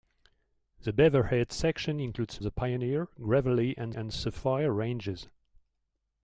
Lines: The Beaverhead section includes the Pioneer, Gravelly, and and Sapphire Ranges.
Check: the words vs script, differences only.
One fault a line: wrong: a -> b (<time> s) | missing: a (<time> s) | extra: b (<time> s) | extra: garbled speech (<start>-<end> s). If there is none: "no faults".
no faults